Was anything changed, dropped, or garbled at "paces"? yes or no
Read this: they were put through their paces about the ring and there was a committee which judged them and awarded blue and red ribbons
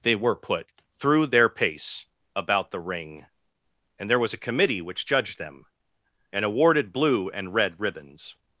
yes